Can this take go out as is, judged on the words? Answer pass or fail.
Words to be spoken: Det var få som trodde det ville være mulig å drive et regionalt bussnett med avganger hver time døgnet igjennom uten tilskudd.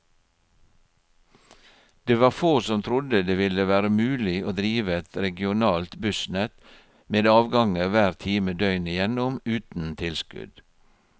pass